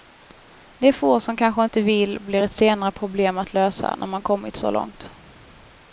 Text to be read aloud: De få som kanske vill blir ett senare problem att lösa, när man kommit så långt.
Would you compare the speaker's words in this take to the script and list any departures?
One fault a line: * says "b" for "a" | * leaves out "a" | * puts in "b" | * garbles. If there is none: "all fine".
* puts in "inte"